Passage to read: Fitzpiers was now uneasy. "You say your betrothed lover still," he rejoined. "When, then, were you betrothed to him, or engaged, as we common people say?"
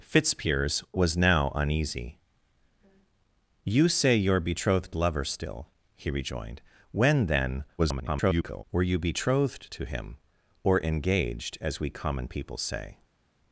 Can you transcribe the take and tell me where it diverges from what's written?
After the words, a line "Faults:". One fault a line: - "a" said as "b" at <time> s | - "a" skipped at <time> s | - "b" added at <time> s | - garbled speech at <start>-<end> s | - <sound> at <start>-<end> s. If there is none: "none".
Fitzpiers was now uneasy. "You say your betrothed lover still," he rejoined. "When, then, [garbled] were you betrothed to him, or engaged, as we common people say?"
Faults:
- garbled speech at 7.8-8.6 s